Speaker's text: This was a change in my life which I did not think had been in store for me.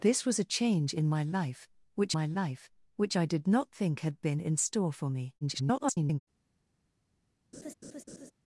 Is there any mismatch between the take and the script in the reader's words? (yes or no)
yes